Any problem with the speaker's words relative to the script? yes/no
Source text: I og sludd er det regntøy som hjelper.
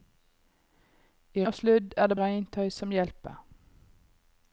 no